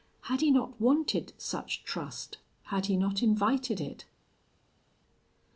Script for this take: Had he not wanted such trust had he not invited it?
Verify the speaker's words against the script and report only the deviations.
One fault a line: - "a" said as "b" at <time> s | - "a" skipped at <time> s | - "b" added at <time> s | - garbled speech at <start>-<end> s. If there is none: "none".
none